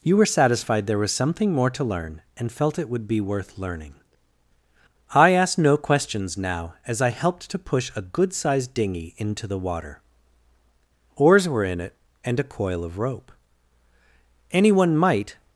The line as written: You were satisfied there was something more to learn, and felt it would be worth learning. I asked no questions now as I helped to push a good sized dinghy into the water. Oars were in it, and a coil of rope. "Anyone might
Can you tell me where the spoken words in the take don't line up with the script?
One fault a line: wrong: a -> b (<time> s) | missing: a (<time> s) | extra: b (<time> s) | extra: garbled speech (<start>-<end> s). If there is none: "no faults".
no faults